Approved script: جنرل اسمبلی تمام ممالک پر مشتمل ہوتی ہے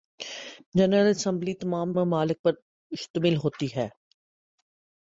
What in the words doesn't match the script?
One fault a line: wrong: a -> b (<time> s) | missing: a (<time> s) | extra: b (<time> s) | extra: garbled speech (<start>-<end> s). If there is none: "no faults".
no faults